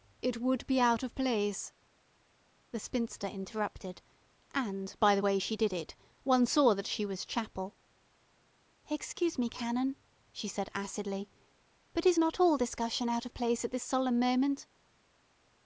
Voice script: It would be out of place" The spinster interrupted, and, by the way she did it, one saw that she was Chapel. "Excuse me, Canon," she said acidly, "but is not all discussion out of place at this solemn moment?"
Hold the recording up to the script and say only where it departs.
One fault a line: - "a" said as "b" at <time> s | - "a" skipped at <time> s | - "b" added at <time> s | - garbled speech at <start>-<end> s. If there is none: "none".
none